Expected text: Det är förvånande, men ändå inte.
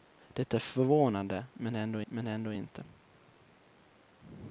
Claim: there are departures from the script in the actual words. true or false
true